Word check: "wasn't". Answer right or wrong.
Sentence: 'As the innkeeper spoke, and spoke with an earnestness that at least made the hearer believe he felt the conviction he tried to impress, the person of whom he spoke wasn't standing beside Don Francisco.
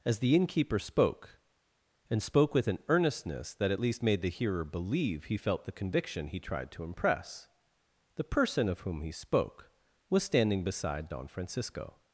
wrong